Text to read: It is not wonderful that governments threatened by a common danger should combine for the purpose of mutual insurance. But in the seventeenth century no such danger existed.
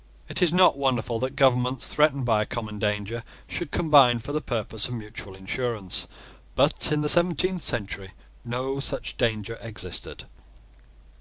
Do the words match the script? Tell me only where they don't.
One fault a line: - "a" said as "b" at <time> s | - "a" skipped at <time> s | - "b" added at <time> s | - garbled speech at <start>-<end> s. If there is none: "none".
none